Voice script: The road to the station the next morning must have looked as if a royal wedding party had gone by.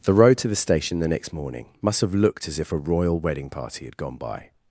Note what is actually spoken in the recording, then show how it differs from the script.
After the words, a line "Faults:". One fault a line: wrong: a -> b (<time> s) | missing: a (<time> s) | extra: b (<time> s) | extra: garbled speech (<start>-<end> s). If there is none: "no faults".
The road to the station the next morning must have looked as if a royal wedding party had gone by.
Faults:
no faults